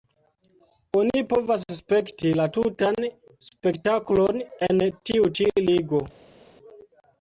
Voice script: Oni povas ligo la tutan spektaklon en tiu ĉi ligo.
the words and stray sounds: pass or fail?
fail